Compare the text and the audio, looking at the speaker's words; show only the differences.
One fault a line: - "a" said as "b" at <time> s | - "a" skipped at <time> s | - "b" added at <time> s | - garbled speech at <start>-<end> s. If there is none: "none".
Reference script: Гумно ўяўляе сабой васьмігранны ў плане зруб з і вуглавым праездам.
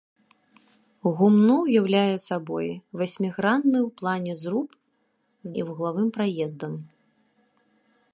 none